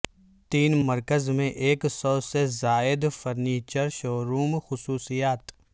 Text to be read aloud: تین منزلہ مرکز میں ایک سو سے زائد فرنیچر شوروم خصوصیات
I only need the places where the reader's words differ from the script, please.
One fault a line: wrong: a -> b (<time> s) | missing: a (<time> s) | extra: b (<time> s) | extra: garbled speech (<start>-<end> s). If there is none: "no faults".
missing: منزلہ (0.8 s)